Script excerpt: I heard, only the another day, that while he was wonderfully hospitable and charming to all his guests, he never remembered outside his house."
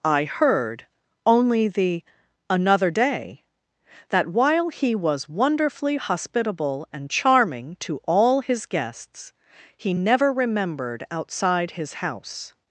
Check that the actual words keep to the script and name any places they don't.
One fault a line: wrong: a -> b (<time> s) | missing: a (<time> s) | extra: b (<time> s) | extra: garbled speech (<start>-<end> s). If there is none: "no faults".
no faults